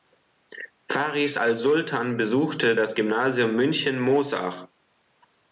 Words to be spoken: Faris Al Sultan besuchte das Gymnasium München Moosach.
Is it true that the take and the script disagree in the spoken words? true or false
false